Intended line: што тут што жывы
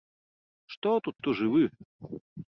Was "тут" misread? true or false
false